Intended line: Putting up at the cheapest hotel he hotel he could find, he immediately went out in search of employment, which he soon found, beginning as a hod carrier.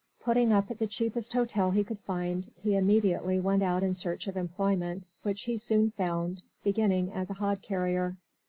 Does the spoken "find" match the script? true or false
true